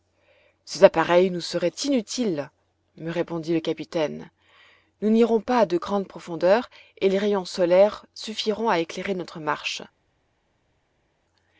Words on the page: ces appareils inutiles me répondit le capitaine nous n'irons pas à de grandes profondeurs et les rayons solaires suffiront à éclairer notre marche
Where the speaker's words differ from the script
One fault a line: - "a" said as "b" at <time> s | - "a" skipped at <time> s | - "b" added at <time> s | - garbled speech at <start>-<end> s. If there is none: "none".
- "nous seraient" added at 1.3 s